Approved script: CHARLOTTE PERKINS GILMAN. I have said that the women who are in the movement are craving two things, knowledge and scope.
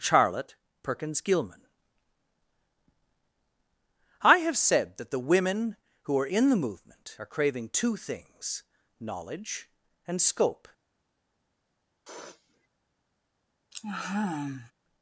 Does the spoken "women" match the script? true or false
true